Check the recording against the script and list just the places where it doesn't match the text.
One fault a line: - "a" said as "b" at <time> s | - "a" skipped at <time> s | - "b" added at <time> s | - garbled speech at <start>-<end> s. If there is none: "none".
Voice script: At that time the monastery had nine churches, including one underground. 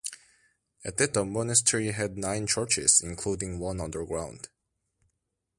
- "time" skipped at 1.1 s